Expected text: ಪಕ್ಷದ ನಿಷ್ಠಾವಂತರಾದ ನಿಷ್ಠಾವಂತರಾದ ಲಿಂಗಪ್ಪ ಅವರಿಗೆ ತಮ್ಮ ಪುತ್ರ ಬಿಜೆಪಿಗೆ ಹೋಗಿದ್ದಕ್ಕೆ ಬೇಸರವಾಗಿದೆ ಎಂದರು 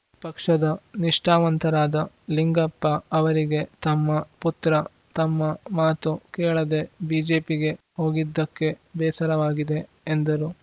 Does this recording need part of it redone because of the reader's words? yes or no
yes